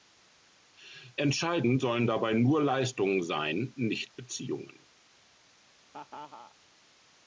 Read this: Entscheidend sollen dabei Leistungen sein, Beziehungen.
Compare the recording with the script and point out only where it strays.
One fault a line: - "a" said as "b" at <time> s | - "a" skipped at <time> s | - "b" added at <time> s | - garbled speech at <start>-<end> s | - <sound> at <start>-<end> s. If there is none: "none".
- "nur" added at 2.3 s
- "nicht" added at 3.7 s
- laugh at 5.9-6.5 s